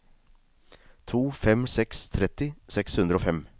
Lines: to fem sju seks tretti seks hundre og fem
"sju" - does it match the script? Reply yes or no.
no